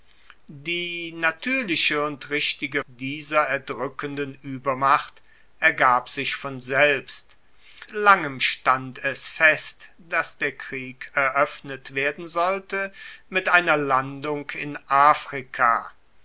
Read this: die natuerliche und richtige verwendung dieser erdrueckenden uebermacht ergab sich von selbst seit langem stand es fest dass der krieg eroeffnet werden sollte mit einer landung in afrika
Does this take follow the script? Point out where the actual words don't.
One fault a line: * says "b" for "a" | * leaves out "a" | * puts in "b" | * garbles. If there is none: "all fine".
* leaves out "verwendung"
* leaves out "seit"